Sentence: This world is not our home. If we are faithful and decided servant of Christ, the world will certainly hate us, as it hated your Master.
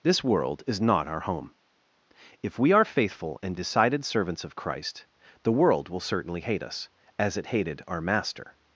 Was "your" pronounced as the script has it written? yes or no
no